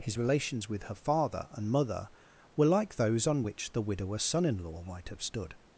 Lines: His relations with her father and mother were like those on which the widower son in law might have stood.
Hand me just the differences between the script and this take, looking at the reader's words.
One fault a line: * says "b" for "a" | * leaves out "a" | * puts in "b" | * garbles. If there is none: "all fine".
all fine